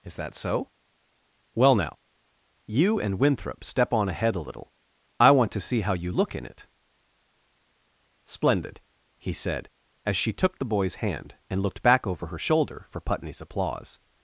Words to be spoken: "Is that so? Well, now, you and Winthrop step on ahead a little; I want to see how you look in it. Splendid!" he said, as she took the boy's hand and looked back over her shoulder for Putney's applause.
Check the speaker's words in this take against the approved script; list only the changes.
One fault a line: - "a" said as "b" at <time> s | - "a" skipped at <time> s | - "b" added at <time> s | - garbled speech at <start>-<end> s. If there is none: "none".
none